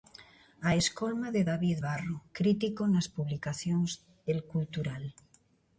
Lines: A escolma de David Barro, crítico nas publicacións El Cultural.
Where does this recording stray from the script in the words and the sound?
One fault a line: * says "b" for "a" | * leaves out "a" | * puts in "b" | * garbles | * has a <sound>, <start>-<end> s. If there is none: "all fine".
all fine